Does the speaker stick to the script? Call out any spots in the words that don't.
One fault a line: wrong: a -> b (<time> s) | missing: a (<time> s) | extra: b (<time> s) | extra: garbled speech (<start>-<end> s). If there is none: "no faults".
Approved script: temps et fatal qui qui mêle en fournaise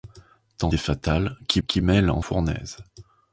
no faults